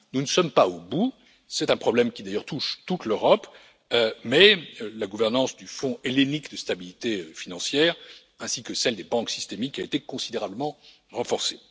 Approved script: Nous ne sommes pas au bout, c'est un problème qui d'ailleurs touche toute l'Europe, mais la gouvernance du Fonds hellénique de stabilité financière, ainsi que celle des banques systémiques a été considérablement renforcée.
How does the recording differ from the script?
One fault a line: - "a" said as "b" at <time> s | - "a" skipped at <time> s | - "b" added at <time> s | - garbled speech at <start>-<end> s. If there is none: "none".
none